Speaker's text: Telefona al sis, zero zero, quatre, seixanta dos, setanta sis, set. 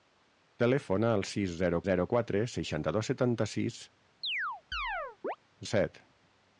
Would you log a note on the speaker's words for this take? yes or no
no